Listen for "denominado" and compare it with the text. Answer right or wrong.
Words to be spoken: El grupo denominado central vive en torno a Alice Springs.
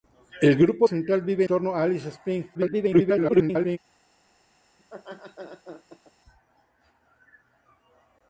wrong